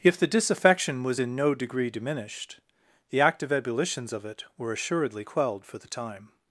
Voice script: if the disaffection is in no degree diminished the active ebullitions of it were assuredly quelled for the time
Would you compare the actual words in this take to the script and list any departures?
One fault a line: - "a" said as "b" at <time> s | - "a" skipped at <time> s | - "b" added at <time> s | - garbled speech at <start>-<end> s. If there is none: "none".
- "is" said as "was" at 1.0 s